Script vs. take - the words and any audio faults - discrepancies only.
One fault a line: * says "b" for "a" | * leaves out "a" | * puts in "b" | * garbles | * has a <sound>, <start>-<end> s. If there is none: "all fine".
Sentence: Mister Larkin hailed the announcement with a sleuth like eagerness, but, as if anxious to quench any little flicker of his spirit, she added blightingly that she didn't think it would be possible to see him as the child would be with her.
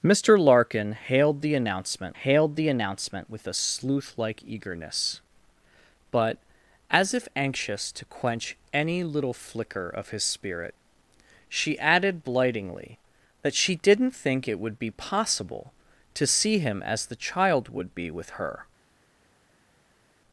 * puts in "hailed the announcement"